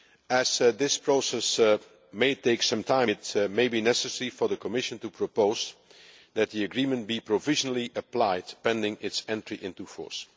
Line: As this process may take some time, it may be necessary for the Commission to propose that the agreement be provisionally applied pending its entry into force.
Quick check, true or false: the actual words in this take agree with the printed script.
true